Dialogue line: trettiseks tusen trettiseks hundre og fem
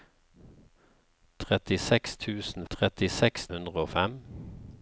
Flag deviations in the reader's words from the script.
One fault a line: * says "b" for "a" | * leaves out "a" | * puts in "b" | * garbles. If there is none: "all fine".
all fine